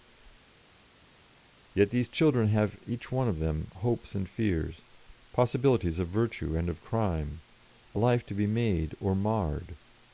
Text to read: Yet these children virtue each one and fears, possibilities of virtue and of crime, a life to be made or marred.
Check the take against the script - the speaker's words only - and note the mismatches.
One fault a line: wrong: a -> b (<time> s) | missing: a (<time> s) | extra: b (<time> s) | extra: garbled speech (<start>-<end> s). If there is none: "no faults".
wrong: virtue -> have (2.5 s)
extra: of them hopes (3.3 s)